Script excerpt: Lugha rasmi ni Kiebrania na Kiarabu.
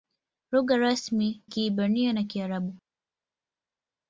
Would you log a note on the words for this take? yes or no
yes